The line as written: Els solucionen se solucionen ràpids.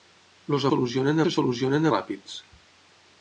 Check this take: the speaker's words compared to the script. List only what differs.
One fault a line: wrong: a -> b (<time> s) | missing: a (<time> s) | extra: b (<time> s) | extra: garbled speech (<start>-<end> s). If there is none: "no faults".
no faults